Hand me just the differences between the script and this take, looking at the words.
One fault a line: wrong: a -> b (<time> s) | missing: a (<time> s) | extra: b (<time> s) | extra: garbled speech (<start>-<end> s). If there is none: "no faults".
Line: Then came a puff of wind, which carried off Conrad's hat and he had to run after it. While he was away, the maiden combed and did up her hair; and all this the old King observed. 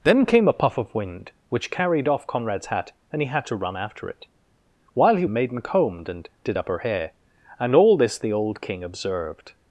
missing: was away the (5.2 s)